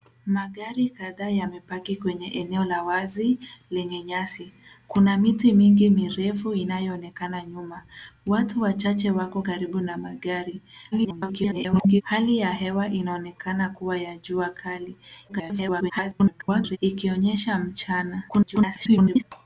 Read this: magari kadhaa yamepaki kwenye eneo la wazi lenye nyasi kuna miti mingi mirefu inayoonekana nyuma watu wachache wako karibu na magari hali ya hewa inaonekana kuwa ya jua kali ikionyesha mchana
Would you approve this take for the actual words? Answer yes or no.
no